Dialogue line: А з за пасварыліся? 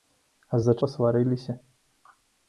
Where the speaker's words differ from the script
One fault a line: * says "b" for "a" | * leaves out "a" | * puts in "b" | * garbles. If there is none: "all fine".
all fine